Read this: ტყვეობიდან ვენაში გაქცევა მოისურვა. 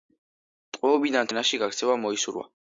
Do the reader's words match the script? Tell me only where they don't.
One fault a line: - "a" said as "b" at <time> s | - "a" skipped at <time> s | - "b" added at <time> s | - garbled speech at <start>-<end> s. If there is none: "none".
none